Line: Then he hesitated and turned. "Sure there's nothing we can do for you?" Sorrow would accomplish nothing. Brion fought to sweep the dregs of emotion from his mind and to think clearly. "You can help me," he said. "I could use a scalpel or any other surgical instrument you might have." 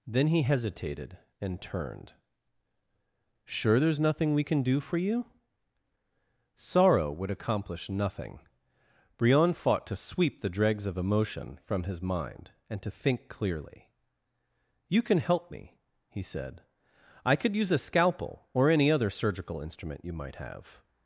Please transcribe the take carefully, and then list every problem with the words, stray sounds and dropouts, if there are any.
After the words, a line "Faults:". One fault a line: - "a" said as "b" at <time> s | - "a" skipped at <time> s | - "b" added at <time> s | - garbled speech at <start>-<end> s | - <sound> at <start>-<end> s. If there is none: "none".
Then he hesitated and turned. "Sure there's nothing we can do for you?" Sorrow would accomplish nothing. Brion fought to sweep the dregs of emotion from his mind and to think clearly. "You can help me," he said. "I could use a scalpel or any other surgical instrument you might have."
Faults:
none